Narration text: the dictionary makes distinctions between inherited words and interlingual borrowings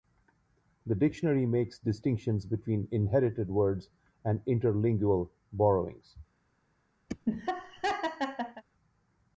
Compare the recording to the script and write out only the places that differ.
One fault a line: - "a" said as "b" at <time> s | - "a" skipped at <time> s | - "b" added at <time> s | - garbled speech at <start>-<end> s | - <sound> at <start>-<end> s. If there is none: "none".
- laugh at 7.1-8.6 s